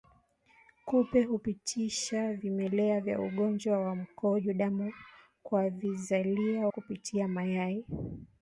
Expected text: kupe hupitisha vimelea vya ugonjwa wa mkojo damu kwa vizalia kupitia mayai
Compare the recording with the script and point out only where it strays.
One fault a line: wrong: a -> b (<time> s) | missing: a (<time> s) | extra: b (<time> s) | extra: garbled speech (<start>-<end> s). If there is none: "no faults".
no faults